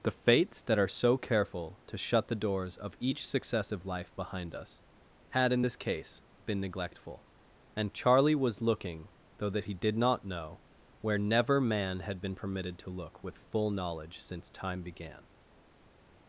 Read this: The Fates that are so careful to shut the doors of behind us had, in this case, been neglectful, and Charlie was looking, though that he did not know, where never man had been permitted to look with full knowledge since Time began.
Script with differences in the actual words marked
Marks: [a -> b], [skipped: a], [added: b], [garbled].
The Fates that are so careful to shut the doors of [added: each successive life] behind us had, in this case, been neglectful, and Charlie was looking, though that he did not know, where never man had been permitted to look with full knowledge since Time began.